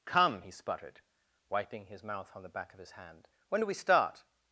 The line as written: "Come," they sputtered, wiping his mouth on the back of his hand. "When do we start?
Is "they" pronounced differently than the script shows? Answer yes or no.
yes